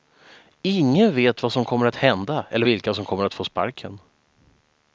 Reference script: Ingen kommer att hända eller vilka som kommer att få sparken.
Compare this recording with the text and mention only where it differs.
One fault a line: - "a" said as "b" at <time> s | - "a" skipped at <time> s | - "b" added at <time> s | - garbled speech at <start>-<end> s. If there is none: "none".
- "vet vad som" added at 1.1 s